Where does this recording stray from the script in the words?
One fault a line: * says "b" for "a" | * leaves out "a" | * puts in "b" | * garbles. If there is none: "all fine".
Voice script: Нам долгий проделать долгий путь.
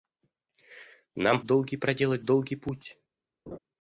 all fine